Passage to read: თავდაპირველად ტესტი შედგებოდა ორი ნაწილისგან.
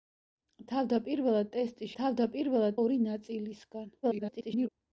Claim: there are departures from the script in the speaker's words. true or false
true